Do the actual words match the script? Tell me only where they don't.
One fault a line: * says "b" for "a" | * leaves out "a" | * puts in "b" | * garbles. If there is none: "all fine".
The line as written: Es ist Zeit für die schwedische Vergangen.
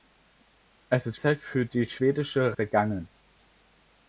all fine